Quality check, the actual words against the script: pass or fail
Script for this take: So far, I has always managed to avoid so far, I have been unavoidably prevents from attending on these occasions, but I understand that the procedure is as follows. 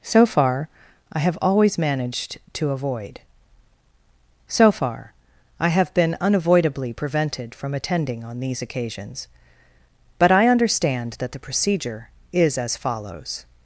fail